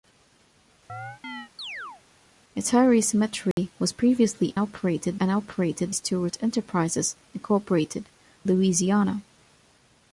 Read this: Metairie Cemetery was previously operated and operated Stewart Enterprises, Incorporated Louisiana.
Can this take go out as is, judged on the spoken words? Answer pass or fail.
pass